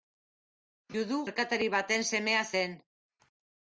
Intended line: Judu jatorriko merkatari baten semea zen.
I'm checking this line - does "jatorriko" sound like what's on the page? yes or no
no